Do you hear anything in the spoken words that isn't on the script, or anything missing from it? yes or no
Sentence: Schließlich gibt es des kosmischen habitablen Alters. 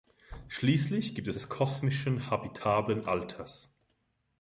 no